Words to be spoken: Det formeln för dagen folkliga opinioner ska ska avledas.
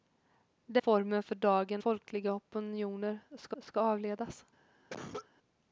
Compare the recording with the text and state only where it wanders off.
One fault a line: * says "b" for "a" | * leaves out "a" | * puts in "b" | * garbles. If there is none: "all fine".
all fine